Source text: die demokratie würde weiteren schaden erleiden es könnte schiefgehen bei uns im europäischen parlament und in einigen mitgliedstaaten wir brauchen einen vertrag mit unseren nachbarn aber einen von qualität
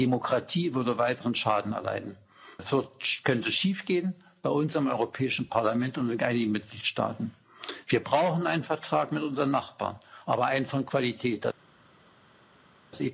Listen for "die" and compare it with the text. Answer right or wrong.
right